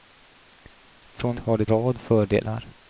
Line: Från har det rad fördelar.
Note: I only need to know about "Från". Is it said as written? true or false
true